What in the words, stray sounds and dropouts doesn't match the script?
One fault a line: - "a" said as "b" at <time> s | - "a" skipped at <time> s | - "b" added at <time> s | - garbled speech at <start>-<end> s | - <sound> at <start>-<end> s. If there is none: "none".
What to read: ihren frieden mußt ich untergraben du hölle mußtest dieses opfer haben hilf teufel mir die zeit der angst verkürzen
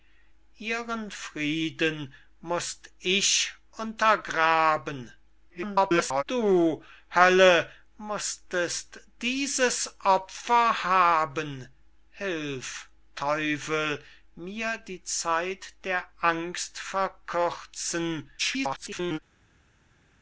- garbled speech at 5.5-6.2 s
- garbled speech at 18.4-19.2 s